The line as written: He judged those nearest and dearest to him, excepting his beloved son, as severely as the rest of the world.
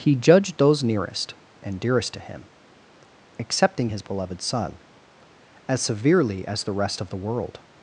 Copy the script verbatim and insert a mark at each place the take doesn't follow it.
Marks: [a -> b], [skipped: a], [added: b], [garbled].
He judged those nearest and dearest to him, excepting his beloved son, as severely as the rest of the world.